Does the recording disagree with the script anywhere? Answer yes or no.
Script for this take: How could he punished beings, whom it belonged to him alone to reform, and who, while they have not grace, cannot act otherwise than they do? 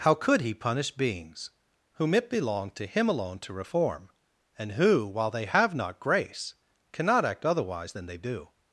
yes